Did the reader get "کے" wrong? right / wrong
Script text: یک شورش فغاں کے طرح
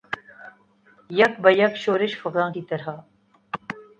wrong